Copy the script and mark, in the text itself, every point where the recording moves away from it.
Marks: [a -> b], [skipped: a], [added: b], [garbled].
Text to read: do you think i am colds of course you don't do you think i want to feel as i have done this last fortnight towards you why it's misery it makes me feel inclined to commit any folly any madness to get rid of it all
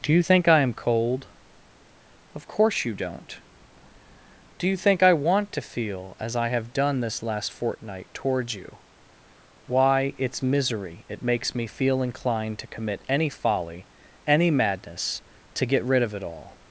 do you think i am [colds -> cold] of course you don't do you think i want to feel as i have done this last fortnight towards you why it's misery it makes me feel inclined to commit any folly any madness to get rid of it all